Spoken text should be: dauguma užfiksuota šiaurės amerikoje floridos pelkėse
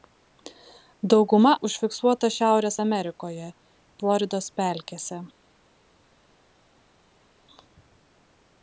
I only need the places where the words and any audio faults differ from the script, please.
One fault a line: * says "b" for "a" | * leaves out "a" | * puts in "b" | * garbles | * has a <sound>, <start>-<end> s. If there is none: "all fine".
all fine